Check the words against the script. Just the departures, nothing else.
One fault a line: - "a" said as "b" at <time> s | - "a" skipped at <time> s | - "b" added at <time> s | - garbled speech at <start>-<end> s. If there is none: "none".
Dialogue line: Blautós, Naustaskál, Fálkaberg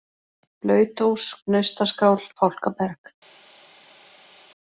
none